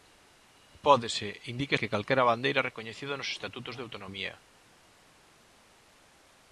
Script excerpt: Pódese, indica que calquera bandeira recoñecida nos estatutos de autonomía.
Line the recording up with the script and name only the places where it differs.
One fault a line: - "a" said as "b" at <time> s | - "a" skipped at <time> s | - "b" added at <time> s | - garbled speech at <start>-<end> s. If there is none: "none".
none